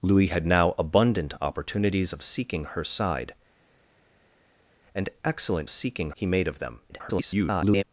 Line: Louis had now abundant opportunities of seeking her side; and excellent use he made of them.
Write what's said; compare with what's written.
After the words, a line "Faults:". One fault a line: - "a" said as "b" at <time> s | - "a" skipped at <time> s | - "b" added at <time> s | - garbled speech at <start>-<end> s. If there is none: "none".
Louis had now abundant opportunities of seeking her side; and excellent seeking he made of them. [garbled]
Faults:
- "use" said as "seeking" at 5.7 s
- garbled speech at 6.9-7.8 s